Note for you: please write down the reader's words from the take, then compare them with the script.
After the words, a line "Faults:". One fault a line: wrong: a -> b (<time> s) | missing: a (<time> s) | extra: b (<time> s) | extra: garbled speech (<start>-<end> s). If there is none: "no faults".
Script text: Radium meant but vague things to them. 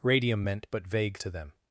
Radium meant but vague to them.
Faults:
missing: things (1.2 s)